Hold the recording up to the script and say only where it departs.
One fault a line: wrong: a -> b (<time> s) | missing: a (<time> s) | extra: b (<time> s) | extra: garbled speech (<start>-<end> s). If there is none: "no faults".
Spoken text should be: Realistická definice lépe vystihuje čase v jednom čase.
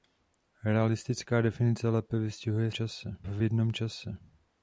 no faults